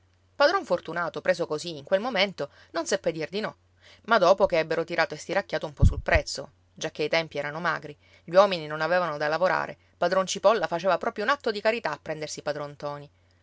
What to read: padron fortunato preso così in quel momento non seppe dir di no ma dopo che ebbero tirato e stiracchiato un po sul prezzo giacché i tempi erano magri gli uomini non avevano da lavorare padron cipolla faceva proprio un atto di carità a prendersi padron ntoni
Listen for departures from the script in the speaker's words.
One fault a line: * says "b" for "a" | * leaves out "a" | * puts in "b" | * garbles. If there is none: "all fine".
all fine